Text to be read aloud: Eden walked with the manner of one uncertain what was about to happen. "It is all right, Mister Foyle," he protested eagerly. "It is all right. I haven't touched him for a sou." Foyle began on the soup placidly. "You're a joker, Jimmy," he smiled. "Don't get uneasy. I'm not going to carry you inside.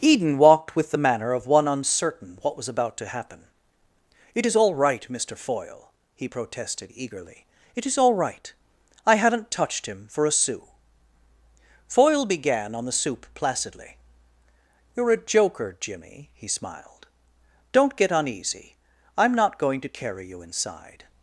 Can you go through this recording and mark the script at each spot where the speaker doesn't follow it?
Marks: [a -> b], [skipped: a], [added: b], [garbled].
Eden walked with the manner of one uncertain what was about to happen. "It is all right, Mister Foyle," he protested eagerly. "It is all right. I haven't touched him for a sou." Foyle began on the soup placidly. "You're a joker, Jimmy," he smiled. "Don't get uneasy. I'm not going to carry you inside.